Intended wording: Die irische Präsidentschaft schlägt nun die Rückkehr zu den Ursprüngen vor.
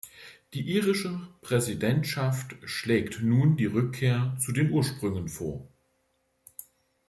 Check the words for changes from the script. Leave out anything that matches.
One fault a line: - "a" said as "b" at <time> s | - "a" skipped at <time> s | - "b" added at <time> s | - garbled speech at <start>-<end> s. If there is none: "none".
none